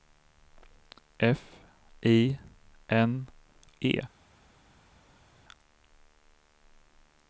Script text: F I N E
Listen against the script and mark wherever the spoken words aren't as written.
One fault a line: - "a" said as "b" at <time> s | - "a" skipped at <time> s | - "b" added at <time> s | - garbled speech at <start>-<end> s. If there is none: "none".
none